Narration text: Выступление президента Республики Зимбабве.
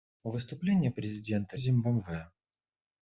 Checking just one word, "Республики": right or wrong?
wrong